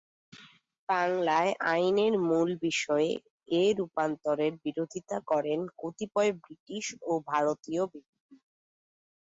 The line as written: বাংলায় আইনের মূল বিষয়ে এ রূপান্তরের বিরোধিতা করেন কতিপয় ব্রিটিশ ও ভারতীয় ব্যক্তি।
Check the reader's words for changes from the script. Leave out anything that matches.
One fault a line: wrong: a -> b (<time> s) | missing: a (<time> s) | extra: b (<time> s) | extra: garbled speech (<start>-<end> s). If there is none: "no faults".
no faults